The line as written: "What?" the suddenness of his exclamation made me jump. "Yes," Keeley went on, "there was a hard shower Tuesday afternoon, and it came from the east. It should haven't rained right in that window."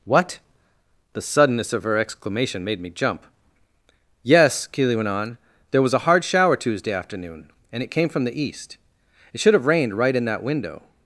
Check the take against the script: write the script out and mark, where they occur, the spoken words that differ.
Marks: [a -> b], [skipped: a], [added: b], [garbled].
"What?" the suddenness of [his -> her] exclamation made me jump. "Yes," Keeley went on, "there was a hard shower Tuesday afternoon, and it came from the east. It should [haven't -> have] rained right in that window."